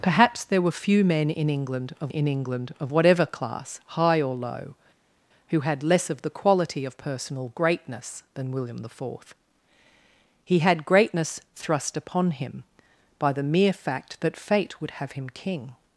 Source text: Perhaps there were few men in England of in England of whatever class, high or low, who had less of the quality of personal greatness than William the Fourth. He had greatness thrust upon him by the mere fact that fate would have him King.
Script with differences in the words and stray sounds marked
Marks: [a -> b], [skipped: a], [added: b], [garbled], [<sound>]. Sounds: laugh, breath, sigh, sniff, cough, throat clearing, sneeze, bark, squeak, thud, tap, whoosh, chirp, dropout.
Perhaps there were few men in England of in England of whatever class, high or low, who had less of the quality of personal greatness than William the Fourth. He had greatness thrust upon him by the mere fact that fate would have him King.